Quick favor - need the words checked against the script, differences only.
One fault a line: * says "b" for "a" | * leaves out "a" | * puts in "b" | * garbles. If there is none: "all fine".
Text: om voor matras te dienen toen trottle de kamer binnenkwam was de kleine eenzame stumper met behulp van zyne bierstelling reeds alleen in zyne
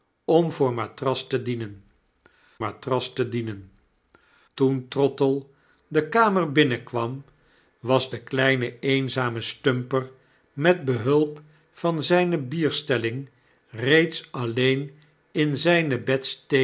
* puts in "matras te dienen"